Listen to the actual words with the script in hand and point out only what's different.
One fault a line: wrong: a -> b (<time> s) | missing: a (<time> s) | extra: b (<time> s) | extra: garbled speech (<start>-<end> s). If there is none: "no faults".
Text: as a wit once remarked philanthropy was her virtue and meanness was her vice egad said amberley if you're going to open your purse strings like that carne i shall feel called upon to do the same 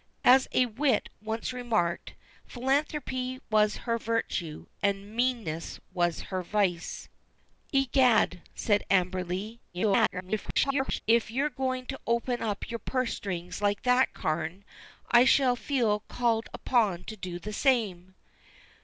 extra: garbled speech (9.7-11.0 s)